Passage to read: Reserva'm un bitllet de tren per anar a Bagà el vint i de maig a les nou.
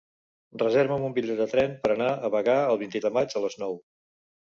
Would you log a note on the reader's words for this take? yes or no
no